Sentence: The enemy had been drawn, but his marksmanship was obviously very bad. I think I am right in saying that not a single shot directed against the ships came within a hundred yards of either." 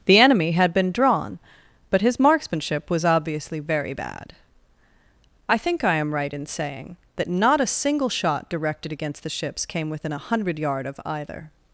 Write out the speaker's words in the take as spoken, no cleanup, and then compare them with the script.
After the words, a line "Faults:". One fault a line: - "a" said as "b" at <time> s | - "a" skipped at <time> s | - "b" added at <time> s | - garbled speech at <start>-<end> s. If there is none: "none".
The enemy had been drawn, but his marksmanship was obviously very bad. I think I am right in saying that not a single shot directed against the ships came within a hundred yard of either."
Faults:
- "yards" said as "yard" at 10.6 s